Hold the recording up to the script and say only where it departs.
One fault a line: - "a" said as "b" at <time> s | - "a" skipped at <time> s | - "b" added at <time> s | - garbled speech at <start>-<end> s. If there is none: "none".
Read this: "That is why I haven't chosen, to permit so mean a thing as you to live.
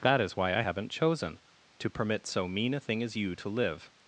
none